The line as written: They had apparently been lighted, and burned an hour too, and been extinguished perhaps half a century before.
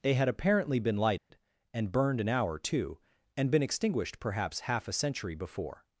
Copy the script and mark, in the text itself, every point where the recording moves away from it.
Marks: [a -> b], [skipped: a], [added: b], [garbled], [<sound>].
They had apparently been lighted, [dropout] and burned an hour too, and been extinguished perhaps half a century before.